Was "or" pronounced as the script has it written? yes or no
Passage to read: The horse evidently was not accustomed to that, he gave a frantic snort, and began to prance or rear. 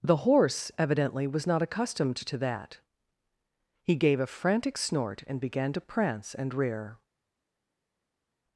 no